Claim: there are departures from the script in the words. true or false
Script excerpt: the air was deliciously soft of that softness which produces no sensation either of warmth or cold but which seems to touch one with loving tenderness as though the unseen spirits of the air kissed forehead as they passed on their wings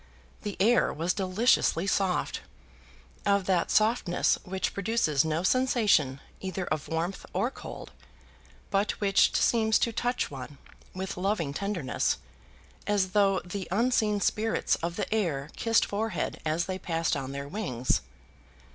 false